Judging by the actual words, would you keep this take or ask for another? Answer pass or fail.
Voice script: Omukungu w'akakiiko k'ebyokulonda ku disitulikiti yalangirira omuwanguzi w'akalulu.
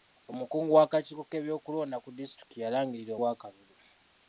fail